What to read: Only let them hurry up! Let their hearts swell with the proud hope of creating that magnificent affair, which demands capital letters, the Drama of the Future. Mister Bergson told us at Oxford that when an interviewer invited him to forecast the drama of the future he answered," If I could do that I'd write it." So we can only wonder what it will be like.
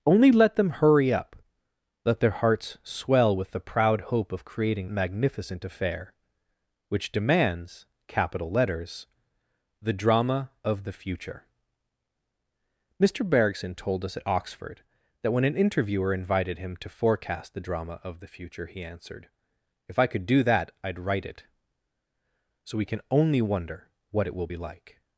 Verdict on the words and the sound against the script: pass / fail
fail